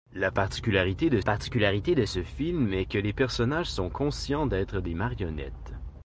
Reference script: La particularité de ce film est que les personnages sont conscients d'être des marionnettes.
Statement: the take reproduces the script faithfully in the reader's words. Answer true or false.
false